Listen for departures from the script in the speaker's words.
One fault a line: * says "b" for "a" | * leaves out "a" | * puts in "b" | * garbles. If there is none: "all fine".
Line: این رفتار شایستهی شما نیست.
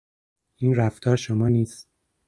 * leaves out "شایستهی"